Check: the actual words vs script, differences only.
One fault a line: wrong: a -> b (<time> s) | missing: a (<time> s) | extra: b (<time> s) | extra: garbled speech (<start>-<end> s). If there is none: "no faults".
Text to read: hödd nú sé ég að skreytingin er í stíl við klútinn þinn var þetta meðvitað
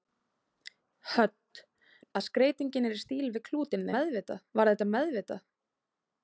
missing: nú sé ég (1.6 s)
wrong: þinn -> meðvitað (4.0 s)